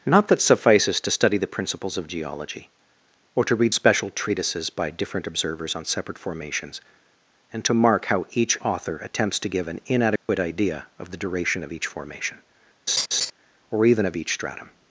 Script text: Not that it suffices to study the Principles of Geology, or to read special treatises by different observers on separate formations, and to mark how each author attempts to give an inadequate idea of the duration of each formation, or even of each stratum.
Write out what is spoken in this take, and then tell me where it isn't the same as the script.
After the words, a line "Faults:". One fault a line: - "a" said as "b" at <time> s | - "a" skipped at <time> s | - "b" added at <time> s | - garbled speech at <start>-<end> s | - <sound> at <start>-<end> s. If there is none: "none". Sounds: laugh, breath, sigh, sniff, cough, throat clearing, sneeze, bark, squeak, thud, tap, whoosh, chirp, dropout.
Not that suffices to study the Principles of Geology, or to read special treatises by different observers on separate formations, and to mark how each author attempts to give an inadequate idea of the duration of each formation, or even of each stratum.
Faults:
- "it" skipped at 0.4 s
- dropout at 10.2-10.3 s
- laugh at 12.9-13.3 s